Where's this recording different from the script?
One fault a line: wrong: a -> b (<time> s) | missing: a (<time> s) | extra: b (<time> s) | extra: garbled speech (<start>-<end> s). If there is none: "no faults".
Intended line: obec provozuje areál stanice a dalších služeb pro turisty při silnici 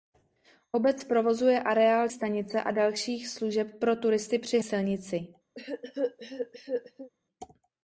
no faults